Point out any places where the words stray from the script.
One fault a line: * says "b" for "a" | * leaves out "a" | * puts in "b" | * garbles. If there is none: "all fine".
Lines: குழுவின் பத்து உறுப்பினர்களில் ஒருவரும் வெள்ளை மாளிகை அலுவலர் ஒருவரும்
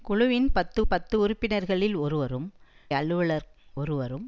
* puts in "பத்து"
* leaves out "வெள்ளை மாளிகை"